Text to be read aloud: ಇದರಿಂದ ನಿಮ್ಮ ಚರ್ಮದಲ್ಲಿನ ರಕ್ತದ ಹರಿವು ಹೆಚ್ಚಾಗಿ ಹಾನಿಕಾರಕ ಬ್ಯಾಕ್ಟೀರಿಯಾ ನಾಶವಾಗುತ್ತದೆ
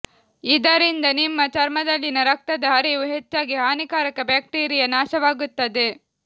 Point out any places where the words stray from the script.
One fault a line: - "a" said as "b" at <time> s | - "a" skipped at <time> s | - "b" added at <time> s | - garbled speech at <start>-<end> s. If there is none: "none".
none